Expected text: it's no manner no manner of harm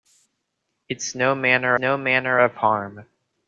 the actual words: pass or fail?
pass